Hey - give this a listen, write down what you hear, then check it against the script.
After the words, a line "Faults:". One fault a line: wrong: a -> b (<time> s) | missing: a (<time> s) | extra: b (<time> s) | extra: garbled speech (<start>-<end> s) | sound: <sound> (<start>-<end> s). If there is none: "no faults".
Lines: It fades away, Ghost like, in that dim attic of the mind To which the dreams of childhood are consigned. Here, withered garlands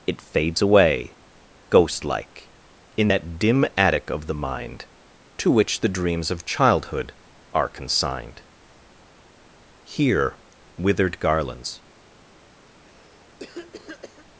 It fades away, Ghost like, in that dim attic of the mind To which the dreams of childhood are consigned. Here, withered garlands
Faults:
sound: cough (12.7-14.3 s)